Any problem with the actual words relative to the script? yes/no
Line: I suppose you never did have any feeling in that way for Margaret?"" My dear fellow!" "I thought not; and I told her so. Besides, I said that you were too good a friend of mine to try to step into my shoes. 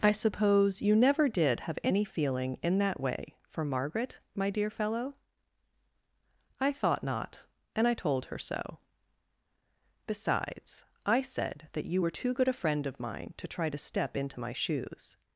no